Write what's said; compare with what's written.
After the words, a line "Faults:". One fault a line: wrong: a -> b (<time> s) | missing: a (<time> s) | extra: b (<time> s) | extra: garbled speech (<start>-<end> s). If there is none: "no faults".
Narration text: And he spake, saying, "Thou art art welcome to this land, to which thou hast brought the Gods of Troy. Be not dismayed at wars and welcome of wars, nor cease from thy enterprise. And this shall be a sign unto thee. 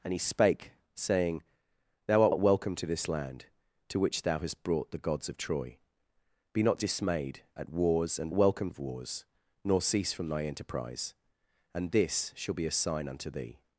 And he spake, saying, "Thou art art welcome to this land, to which thou hast brought the Gods of Troy. Be not dismayed at wars and welcome of wars, nor cease from thy enterprise. And this shall be a sign unto thee.
Faults:
no faults